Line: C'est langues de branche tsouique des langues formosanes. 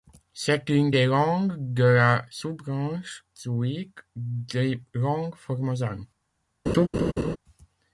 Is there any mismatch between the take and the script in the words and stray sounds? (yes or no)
yes